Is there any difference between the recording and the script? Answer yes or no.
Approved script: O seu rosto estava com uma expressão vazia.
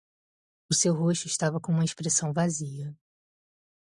no